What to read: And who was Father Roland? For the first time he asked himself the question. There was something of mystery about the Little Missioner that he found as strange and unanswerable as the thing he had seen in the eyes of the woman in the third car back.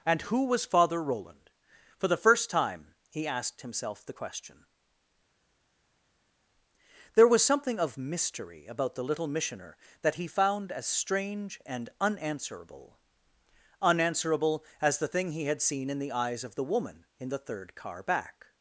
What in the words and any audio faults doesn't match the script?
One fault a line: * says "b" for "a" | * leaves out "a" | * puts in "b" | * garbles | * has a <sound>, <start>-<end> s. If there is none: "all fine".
* puts in "unanswerable"